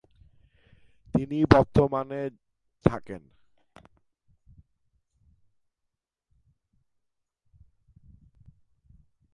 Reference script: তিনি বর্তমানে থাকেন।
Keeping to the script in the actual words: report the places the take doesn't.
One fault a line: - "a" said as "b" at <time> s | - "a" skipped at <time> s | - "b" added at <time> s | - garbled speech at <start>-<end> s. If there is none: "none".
none